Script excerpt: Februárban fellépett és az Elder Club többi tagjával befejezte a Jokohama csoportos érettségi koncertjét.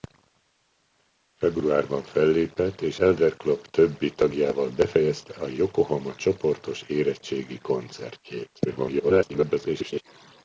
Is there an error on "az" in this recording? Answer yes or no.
yes